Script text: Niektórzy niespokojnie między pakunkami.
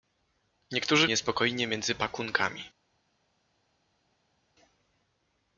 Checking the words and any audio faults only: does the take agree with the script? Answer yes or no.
yes